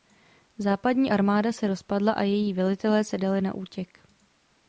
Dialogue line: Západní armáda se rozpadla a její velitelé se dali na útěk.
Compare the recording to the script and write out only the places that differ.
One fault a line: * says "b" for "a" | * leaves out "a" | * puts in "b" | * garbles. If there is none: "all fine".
all fine